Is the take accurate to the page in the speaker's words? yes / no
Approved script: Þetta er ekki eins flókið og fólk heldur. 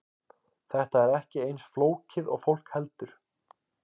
yes